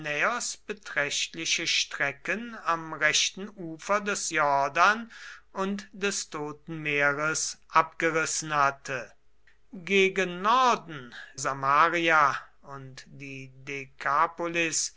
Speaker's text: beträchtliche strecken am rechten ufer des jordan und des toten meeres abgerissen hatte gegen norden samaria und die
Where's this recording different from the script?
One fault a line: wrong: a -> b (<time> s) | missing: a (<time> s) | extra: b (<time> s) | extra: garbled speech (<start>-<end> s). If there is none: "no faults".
no faults